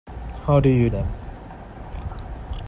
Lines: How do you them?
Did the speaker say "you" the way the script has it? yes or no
yes